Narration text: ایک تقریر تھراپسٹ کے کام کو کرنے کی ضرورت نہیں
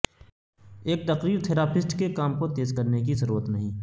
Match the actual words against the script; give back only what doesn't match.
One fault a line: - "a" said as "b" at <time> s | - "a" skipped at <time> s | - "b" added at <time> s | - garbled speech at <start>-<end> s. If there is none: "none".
- "تیز" added at 2.5 s